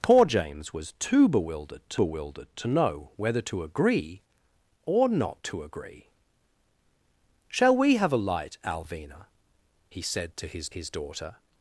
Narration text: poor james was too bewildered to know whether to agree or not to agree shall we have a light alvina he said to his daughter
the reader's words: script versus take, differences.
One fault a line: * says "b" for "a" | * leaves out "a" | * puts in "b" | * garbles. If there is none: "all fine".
* puts in "bewildered to"
* puts in "his"